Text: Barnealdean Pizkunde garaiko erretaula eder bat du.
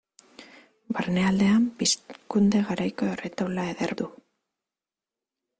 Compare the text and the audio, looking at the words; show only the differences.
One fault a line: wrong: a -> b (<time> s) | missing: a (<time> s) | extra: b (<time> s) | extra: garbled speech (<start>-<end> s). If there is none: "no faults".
missing: bat (4.0 s)